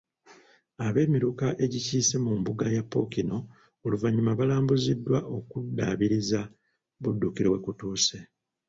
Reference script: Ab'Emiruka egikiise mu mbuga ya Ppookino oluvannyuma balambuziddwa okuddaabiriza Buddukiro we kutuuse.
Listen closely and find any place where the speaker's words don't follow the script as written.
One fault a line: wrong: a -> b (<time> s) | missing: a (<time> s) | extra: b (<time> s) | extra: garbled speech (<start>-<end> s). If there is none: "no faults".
no faults